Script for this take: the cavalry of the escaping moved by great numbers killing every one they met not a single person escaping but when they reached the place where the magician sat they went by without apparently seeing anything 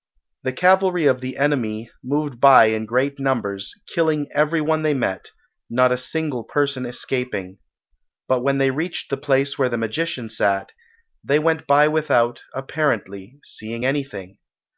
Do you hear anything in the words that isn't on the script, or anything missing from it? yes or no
yes